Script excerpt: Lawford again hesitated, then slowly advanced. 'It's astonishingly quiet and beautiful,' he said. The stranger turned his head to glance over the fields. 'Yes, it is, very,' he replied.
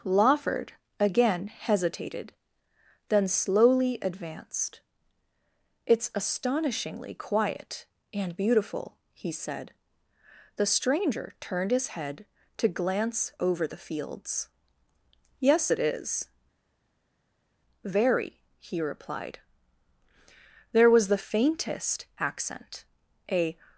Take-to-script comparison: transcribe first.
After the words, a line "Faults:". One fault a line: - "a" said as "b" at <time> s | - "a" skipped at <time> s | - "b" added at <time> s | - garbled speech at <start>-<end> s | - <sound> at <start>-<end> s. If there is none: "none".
Lawford again hesitated, then slowly advanced. 'It's astonishingly quiet and beautiful,' he said. The stranger turned his head to glance over the fields. 'Yes, it is, very,' he replied. There was the faintest accent, a
Faults:
- "There was the faintest accent a" added at 20.7 s